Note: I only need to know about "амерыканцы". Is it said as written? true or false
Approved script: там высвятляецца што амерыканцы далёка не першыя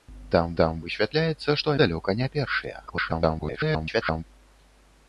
false